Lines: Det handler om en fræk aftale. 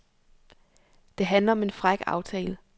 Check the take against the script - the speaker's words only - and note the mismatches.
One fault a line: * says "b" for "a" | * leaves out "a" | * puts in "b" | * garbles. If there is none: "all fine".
all fine